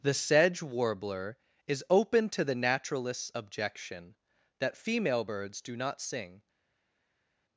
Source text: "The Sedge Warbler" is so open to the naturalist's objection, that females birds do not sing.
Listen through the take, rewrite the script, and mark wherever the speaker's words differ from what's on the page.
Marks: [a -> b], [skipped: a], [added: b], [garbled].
"The Sedge Warbler" is [skipped: so] open to the naturalist's objection, that [females -> female] birds do not sing.